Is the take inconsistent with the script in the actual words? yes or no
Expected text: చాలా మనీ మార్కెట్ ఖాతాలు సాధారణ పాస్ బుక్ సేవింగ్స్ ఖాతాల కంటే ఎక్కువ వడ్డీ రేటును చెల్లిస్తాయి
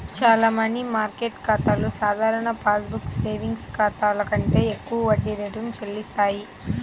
no